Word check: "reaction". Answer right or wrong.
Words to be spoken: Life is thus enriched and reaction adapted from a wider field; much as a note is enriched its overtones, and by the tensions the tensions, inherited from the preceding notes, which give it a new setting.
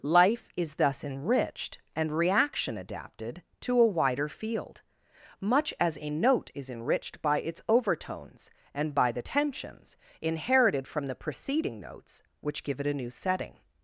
right